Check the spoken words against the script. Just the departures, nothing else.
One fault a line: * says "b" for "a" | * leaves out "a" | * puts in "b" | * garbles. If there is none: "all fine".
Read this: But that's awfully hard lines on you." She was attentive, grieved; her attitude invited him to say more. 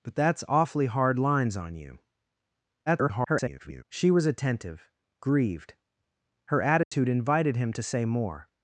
* garbles